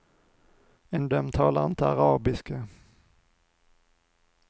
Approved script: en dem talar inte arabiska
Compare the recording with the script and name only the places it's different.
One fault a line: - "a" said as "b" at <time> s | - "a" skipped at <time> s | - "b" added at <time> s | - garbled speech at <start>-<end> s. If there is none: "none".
none